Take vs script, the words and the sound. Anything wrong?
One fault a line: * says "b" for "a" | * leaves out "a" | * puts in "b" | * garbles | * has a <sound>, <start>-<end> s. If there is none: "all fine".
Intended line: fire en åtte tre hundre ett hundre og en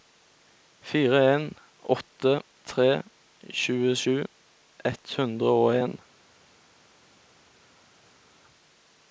* says "tjuesju" for "hundre"